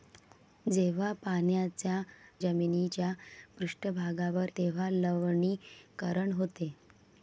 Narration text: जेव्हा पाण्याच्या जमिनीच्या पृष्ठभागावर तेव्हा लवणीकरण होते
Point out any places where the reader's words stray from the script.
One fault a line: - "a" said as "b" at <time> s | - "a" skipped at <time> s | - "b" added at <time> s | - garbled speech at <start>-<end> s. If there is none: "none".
none